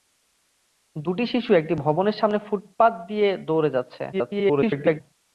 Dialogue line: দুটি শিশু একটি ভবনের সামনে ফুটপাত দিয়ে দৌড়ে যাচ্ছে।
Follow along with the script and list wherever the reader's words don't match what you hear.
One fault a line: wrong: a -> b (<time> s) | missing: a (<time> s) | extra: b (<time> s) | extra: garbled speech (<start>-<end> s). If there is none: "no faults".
extra: garbled speech (4.1-5.0 s)